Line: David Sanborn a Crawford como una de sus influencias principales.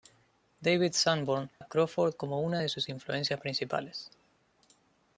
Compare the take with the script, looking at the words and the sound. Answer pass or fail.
pass